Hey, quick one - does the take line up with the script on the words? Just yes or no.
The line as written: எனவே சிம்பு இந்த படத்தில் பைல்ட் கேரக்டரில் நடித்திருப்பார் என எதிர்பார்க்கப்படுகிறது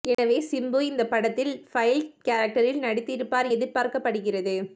no